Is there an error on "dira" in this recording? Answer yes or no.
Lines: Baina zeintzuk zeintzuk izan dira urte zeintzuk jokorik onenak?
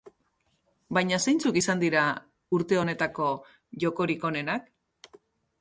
no